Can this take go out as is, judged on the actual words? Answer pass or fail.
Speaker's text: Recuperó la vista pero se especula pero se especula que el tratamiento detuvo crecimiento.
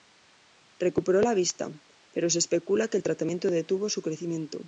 fail